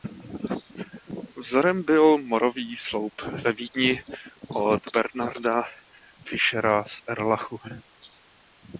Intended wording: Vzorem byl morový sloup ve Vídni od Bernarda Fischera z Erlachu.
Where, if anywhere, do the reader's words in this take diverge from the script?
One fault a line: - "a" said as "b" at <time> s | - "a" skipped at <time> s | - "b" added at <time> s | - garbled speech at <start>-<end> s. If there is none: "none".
none